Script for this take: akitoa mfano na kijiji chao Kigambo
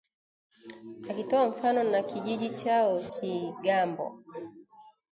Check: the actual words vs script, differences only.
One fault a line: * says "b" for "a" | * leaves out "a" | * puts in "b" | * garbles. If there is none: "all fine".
all fine